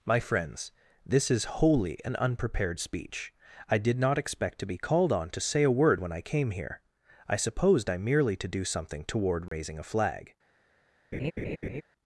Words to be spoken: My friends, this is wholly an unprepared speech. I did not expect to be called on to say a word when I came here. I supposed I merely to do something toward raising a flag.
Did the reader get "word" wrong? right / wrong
right